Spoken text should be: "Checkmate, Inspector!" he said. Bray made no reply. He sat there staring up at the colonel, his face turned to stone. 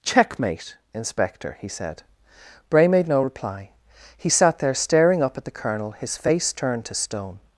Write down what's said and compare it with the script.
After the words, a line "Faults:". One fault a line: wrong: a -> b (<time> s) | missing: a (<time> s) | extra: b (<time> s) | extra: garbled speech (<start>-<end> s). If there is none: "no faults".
"Checkmate, Inspector!" he said. Bray made no reply. He sat there staring up at the colonel, his face turned to stone.
Faults:
no faults